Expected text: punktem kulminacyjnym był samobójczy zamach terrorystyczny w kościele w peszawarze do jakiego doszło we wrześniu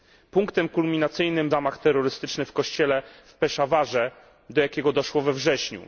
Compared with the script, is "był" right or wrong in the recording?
wrong